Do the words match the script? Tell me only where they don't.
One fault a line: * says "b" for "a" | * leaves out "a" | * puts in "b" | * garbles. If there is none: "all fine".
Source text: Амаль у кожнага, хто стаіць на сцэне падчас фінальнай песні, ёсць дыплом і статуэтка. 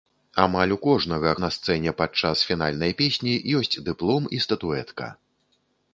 * leaves out "хто стаіць"